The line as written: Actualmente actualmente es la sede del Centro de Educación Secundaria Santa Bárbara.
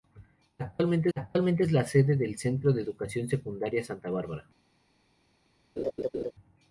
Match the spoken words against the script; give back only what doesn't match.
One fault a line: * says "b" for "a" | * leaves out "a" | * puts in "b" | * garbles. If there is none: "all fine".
all fine